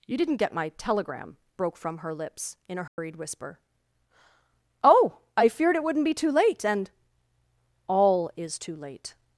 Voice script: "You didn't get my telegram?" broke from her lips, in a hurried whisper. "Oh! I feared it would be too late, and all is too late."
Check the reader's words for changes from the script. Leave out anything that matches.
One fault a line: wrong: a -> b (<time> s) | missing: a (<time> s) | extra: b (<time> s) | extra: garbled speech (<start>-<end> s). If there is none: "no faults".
wrong: would -> wouldn't (5.8 s)